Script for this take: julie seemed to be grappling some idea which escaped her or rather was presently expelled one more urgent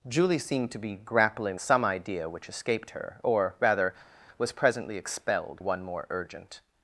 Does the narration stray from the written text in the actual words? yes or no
no